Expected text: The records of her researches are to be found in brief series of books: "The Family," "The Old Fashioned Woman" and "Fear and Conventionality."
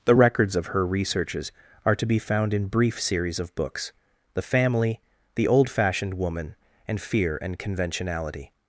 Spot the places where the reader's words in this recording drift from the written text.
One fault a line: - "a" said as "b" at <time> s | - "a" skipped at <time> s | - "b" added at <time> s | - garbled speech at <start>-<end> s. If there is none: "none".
none